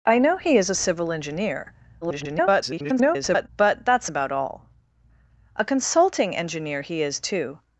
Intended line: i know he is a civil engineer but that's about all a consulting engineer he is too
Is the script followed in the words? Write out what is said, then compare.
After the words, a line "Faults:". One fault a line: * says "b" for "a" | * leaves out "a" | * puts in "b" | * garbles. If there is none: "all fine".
i know he is a civil engineer [garbled] but that's about all a consulting engineer he is too
Faults:
* garbles